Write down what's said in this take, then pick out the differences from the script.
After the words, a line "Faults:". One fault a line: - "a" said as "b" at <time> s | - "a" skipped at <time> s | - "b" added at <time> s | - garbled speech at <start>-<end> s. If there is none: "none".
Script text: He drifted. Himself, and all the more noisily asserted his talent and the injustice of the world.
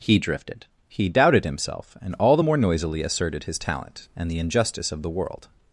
He drifted. He doubted himself, and all the more noisily asserted his talent and the injustice of the world.
Faults:
- "He doubted" added at 0.9 s